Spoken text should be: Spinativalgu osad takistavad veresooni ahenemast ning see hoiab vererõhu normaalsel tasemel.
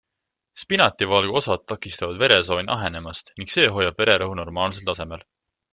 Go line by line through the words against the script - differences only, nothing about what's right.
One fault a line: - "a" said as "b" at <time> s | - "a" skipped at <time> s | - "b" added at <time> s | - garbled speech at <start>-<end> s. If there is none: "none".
none